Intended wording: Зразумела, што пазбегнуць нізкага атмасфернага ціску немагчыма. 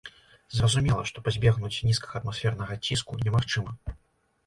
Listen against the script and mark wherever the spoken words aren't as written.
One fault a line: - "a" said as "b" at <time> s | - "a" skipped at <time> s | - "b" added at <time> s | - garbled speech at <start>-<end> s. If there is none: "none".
none